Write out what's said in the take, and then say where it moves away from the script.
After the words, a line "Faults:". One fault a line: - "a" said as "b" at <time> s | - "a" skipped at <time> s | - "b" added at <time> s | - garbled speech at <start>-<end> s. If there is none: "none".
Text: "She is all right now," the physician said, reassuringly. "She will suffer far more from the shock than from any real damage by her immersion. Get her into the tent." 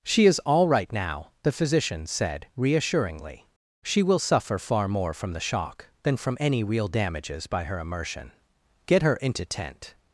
"She is all right now," the physician said, reassuringly. "She will suffer far more from the shock than from any real damages by her immersion. Get her into tent."
Faults:
- "damage" said as "damages" at 6.9 s
- "the" skipped at 9.5 s